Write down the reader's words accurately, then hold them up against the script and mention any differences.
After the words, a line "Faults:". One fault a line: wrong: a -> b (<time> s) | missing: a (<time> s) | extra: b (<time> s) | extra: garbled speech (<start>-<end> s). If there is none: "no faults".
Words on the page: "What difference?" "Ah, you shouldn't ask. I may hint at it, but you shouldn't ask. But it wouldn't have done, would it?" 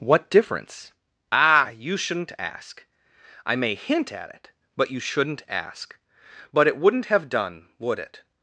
"What difference?" "Ah, you shouldn't ask. I may hint at it, but you shouldn't ask. But it wouldn't have done, would it?"
Faults:
no faults